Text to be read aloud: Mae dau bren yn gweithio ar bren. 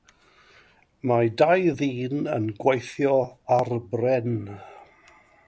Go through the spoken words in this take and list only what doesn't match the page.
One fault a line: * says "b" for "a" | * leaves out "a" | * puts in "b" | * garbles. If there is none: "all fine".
* says "ddyn" for "bren"